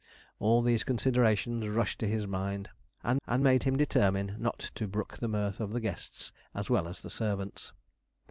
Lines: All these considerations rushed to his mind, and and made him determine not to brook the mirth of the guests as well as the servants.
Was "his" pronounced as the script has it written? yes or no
yes